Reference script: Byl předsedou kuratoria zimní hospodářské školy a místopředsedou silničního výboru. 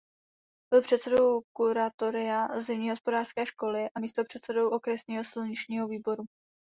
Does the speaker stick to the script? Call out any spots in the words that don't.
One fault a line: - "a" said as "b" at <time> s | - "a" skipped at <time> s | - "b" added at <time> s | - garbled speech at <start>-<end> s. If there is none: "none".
- "okresního" added at 4.7 s